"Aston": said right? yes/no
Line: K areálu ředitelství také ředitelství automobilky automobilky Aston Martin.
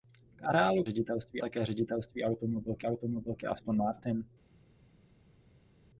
yes